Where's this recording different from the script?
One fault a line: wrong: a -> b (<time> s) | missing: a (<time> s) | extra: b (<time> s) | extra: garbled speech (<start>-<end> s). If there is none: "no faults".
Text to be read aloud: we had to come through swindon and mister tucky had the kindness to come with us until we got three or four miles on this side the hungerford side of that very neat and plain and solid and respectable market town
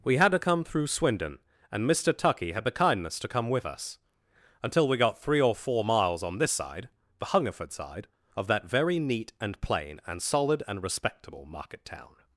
no faults